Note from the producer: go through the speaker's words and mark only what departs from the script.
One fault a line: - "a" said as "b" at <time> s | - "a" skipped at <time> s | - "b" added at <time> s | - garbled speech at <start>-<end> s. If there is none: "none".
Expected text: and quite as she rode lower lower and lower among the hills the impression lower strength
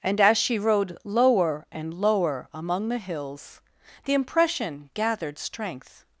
- "quite" skipped at 0.2 s
- "lower" skipped at 1.6 s
- "lower" said as "gathered" at 4.9 s